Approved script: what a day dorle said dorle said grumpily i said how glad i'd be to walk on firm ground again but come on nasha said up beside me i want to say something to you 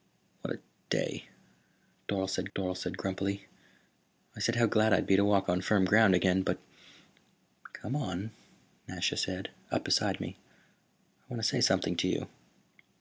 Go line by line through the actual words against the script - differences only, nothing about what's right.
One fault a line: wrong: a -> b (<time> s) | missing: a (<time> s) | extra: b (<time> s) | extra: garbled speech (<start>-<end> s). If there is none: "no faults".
no faults